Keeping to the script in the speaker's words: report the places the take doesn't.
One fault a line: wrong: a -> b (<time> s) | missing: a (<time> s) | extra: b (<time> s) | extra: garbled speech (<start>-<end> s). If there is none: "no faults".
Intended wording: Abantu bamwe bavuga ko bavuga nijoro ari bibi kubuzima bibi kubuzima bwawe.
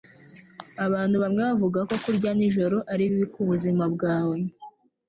wrong: bavuga -> kurya (2.0 s)
missing: bibi kubuzima (3.8 s)